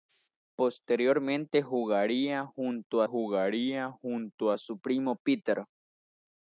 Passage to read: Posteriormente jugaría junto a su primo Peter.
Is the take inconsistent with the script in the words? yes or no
yes